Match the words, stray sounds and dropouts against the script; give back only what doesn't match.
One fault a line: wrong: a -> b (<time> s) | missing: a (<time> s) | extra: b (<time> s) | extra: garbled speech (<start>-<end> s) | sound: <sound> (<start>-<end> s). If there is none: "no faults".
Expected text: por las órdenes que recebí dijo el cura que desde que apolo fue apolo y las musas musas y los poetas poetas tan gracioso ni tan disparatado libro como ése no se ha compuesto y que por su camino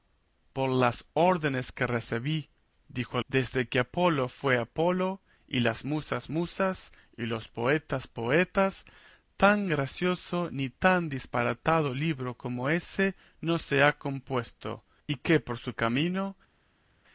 missing: el cura que (3.2 s)